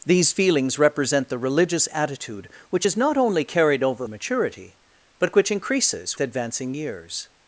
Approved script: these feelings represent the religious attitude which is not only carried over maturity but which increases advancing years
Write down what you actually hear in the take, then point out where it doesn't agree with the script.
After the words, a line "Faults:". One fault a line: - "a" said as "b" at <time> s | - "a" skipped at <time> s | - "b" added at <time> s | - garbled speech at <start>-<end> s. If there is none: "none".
these feelings represent the religious attitude which is not only carried over maturity but which increases advancing years
Faults:
none